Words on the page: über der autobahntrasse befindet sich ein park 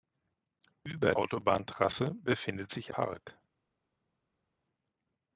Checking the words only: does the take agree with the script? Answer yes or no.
no